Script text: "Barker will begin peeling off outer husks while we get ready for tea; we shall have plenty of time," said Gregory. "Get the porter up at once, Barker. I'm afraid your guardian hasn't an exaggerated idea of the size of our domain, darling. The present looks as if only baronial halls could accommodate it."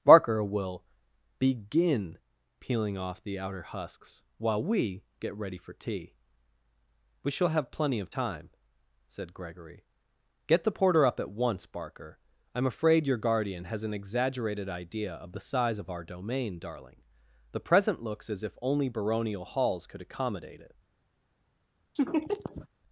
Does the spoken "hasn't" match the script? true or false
false